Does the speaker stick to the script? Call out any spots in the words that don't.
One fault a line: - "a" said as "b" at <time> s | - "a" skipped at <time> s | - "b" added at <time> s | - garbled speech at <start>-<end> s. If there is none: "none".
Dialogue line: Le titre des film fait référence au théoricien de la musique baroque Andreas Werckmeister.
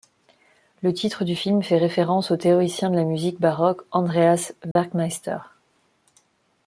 - "des" said as "du" at 1.2 s